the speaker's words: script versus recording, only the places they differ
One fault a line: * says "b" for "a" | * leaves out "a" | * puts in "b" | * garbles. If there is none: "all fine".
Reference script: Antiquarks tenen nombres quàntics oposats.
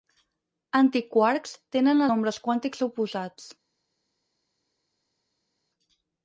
all fine